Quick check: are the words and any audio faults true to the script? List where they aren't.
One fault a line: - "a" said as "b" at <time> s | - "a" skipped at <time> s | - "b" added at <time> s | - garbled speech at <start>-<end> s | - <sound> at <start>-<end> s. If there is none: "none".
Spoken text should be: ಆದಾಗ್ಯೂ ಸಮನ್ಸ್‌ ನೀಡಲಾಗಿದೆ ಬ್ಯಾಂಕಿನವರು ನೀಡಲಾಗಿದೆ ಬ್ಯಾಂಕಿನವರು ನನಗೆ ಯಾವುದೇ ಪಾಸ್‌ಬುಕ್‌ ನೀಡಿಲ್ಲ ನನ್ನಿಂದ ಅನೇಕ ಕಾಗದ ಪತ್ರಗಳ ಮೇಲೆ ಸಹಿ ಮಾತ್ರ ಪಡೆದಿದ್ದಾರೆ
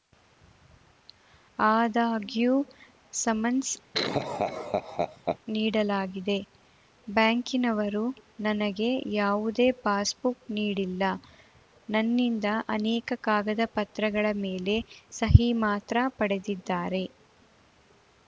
- laugh at 3.9-5.4 s
- "ನೀಡಲಾಗಿದೆ ಬ್ಯಾಂಕಿನವರು" skipped at 8.0 s